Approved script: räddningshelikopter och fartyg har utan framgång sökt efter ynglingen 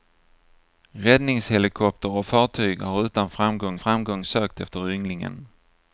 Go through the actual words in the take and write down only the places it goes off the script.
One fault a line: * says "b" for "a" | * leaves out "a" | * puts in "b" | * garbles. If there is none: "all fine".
* puts in "framgång"